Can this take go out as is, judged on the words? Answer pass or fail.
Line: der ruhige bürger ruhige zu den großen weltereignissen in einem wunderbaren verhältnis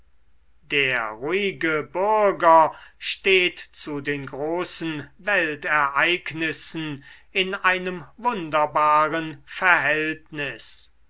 fail